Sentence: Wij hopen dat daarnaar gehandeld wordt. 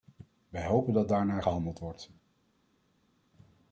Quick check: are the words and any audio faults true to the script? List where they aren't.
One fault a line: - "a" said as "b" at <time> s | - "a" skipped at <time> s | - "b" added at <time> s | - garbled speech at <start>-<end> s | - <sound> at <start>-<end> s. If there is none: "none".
none